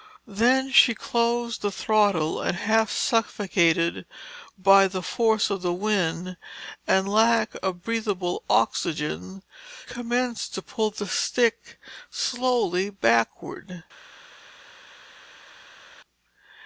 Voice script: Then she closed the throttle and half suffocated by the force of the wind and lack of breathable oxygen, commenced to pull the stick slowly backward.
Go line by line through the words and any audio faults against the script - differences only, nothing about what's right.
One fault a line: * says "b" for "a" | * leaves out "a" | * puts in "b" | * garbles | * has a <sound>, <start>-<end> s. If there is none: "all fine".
all fine